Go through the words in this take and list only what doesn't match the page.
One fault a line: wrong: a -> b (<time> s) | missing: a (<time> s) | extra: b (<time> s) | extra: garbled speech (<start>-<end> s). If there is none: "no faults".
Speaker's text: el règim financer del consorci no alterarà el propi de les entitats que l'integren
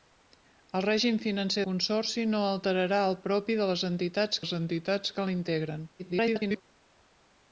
missing: del (1.6 s)
extra: les entitats (4.4 s)
extra: garbled speech (6.0-6.6 s)